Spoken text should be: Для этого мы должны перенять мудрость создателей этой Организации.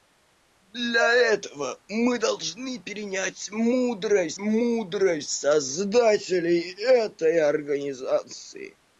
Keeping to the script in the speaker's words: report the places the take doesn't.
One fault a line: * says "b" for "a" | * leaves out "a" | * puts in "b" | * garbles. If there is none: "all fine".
* puts in "мудрость"